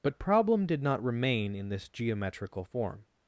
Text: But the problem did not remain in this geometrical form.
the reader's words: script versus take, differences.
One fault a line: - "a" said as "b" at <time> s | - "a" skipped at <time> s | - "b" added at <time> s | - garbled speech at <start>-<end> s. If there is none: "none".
- "the" skipped at 0.2 s